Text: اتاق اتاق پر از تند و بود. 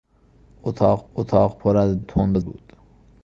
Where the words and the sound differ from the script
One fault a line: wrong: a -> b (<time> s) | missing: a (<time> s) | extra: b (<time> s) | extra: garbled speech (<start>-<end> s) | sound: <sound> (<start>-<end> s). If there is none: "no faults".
no faults